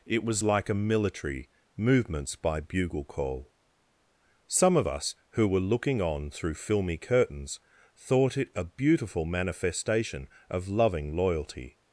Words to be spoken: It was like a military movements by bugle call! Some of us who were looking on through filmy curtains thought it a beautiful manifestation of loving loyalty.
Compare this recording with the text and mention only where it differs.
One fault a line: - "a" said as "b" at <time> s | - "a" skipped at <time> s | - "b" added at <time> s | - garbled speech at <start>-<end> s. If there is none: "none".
none